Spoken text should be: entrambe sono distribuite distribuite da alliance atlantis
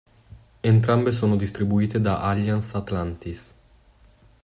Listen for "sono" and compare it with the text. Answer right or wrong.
right